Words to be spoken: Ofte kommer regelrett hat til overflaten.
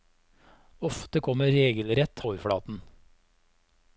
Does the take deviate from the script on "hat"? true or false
true